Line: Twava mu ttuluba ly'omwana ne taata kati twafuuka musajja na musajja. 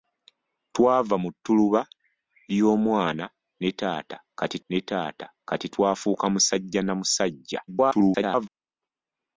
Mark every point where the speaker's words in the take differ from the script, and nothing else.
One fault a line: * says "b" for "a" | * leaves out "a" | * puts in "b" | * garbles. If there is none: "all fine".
* puts in "ne taata kati"
* garbles